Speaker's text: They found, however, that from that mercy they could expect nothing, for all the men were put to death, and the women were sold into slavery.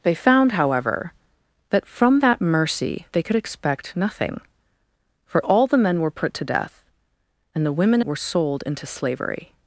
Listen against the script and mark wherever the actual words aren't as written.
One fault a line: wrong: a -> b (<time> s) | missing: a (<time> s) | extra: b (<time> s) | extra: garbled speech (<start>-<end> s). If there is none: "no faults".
no faults